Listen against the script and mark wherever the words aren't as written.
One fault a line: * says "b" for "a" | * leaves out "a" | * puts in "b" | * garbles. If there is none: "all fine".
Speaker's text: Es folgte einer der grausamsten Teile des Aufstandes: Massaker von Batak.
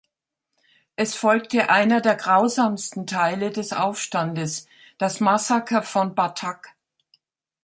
* puts in "Das"